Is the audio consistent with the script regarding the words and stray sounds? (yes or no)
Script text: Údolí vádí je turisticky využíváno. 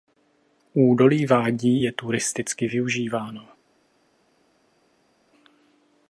yes